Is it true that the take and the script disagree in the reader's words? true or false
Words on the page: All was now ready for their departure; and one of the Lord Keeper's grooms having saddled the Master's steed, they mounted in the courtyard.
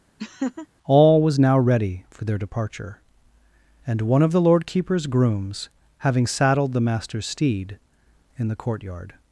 true